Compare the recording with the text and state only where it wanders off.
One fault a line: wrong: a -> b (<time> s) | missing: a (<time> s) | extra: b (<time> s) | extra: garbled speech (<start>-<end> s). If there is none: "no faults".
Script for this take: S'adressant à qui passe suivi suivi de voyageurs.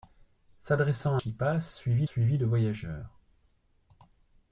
no faults